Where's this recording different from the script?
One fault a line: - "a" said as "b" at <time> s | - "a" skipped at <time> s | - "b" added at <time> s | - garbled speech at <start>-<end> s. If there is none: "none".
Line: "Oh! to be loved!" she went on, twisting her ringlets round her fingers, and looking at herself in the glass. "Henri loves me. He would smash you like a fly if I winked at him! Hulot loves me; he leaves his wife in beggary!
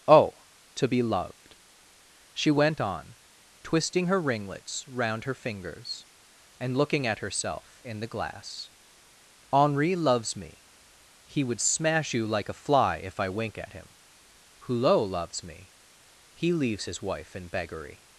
- "winked" said as "wink" at 13.3 s